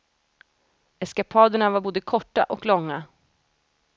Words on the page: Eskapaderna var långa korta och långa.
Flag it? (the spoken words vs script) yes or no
yes